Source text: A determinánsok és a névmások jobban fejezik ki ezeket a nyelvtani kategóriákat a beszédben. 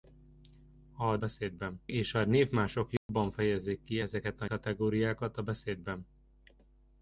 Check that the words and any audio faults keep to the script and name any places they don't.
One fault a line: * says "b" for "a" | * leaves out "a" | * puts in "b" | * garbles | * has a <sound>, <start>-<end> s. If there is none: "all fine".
* says "beszédben" for "determinánsok"
* has a dropout, 3.0-3.1 s
* leaves out "nyelvtani"